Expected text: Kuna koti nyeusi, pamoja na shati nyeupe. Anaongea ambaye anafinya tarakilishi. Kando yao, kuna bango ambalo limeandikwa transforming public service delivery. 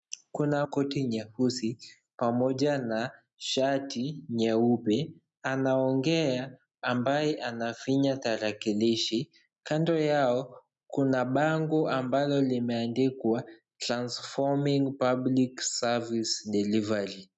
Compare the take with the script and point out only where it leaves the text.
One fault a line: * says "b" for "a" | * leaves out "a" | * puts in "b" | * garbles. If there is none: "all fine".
all fine